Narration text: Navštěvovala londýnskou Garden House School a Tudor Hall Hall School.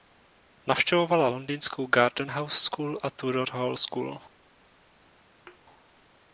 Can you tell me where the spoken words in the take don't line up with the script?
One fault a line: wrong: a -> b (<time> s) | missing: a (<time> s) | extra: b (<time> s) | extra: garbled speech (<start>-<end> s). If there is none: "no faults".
missing: Hall (3.8 s)